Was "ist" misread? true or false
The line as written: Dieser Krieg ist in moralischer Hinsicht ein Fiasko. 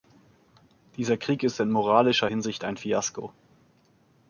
false